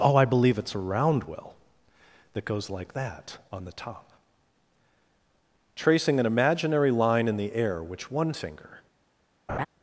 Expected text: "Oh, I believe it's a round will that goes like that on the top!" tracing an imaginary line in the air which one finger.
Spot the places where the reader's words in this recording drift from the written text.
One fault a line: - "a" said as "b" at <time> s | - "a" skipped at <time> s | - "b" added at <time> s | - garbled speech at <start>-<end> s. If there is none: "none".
none